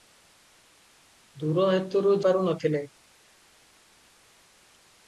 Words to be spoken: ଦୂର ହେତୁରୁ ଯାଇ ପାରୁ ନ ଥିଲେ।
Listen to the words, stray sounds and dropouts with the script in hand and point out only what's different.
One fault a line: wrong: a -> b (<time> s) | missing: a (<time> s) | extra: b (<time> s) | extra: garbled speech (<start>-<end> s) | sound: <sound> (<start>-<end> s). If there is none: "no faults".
missing: ଯାଇ (2.2 s)